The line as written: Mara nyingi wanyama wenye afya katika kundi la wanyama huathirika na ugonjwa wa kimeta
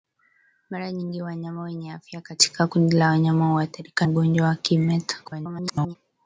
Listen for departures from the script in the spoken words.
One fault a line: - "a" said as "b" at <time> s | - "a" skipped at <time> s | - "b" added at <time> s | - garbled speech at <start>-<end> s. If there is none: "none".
- "na" skipped at 4.1 s
- garbled speech at 5.2-6.0 s